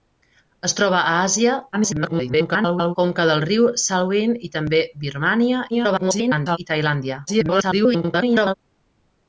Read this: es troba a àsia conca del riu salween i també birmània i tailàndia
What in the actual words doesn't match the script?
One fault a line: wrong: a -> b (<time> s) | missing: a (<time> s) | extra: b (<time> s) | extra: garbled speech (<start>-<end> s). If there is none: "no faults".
extra: garbled speech (1.7-3.0 s)
extra: garbled speech (5.7-6.6 s)
extra: garbled speech (7.3-8.5 s)